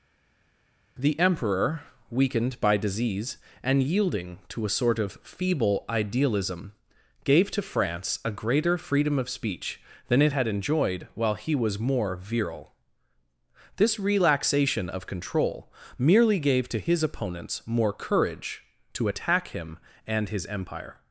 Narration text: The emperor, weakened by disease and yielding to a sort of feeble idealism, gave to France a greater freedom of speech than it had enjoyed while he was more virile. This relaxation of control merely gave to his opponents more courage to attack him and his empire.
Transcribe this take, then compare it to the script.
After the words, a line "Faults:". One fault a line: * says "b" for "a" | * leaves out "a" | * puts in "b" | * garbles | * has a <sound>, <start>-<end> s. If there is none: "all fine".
The emperor, weakened by disease and yielding to a sort of feeble idealism, gave to France a greater freedom of speech than it had enjoyed while he was more virile. This relaxation of control merely gave to his opponents more courage to attack him and his empire.
Faults:
all fine